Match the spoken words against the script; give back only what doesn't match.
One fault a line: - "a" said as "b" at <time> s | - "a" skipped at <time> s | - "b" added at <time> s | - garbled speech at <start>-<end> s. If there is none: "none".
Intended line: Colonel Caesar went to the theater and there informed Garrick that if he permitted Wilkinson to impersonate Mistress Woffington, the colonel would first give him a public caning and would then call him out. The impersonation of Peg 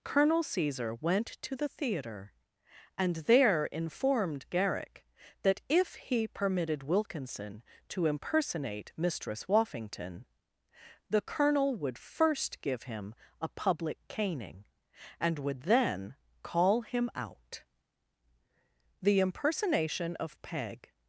none